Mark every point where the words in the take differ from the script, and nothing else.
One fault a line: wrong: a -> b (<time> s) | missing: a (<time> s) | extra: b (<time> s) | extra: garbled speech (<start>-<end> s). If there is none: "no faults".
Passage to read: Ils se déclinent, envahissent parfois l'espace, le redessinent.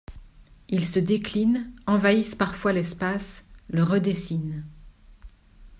no faults